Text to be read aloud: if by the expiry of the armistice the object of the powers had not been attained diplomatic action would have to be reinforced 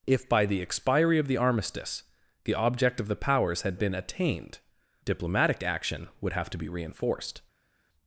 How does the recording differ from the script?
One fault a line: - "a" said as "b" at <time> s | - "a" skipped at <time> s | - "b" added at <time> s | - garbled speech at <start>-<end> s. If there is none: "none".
- "not" skipped at 3.8 s